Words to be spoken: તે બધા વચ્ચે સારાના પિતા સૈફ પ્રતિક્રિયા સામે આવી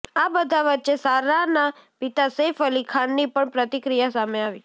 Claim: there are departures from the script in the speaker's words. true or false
true